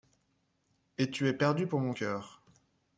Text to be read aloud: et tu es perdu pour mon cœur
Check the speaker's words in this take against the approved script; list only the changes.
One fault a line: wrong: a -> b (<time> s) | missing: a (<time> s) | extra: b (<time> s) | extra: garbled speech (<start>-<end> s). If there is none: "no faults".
no faults